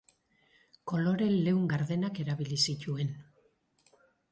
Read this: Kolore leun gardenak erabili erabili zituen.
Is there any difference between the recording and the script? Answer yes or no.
yes